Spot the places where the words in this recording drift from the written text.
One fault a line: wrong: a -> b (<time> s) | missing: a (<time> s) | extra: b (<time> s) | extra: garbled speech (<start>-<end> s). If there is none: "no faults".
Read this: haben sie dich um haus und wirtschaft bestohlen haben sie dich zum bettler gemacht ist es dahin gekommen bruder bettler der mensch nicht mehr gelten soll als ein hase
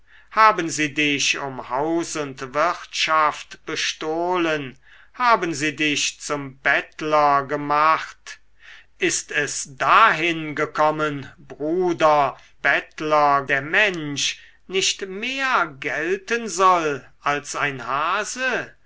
no faults